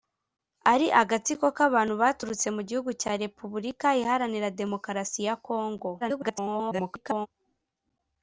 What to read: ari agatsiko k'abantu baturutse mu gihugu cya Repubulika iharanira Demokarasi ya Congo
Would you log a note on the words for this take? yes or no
yes